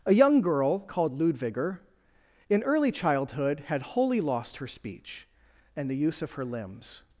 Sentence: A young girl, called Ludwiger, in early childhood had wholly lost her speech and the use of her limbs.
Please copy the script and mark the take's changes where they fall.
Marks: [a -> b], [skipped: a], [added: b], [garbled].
A young girl, called Ludwiger, in early childhood had wholly lost her speech and the use of her limbs.